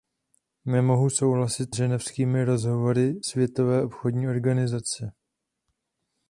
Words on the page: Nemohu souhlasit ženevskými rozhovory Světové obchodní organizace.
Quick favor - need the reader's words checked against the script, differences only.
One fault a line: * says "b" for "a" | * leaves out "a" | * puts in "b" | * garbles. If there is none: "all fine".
all fine